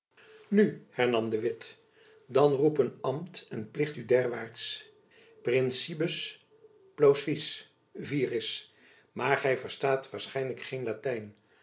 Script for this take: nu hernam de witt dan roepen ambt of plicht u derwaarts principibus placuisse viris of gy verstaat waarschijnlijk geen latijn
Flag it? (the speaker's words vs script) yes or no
yes